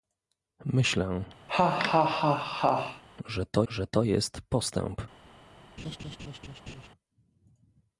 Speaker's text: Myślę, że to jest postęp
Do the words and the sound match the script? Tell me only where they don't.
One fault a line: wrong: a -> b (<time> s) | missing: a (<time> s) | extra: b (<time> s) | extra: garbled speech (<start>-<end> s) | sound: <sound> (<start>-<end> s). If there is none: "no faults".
sound: laugh (1.5-3.0 s)
extra: że to (3.7 s)
sound: laugh (5.8-6.9 s)